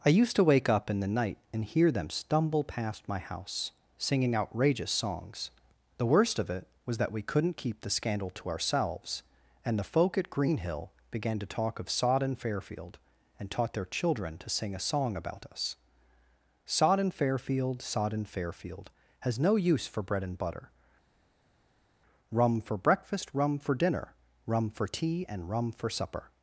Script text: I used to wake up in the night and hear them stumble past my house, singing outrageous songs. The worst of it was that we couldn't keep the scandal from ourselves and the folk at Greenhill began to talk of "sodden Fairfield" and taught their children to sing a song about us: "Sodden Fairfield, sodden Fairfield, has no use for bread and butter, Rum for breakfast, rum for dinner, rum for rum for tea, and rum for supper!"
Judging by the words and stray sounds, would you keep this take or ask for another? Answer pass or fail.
fail